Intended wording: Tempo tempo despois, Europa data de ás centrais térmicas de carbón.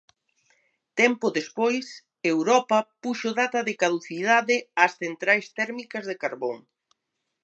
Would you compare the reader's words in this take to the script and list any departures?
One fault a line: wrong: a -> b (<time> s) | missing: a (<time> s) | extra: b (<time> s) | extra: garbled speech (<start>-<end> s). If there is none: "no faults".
missing: tempo (1.3 s)
extra: puxo (3.0 s)
extra: caducidade (3.8 s)